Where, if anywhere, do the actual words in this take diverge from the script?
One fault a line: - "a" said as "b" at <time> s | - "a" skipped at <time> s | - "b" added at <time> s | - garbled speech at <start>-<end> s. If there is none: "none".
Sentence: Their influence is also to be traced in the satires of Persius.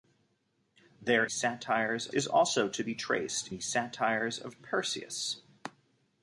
- "influence" said as "satires" at 1.3 s
- "in" skipped at 3.5 s